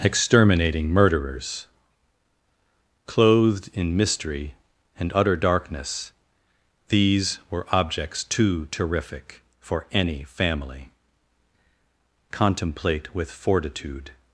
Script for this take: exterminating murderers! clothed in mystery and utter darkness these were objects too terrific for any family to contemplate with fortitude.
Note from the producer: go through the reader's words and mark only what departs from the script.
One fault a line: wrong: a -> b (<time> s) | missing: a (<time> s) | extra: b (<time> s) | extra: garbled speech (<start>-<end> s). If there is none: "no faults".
missing: to (10.9 s)